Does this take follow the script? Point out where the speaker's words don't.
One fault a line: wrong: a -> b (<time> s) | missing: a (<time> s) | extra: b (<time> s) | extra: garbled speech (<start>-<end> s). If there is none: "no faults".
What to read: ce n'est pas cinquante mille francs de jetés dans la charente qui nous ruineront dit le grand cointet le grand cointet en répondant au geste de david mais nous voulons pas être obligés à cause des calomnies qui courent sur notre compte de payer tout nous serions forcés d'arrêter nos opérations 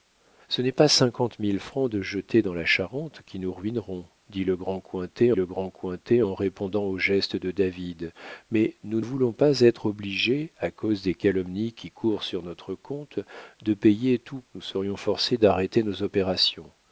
no faults